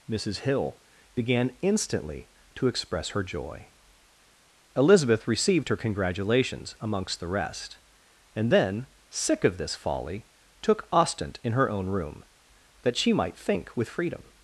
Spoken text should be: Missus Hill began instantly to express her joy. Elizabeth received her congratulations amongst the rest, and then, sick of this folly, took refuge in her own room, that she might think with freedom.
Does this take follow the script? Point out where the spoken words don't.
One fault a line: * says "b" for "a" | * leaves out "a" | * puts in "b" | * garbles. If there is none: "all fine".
* says "ostent" for "refuge"